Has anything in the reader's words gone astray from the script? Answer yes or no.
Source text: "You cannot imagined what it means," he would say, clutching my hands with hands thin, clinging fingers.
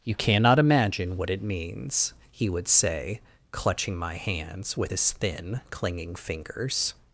yes